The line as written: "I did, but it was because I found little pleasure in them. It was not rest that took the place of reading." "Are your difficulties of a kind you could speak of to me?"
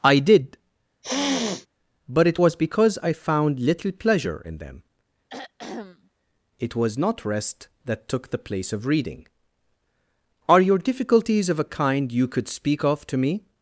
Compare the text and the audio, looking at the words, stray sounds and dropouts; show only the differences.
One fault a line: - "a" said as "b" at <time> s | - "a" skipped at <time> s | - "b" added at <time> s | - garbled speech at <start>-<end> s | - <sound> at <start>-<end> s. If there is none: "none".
- sniff at 1.0-1.7 s
- throat clearing at 5.3-6.1 s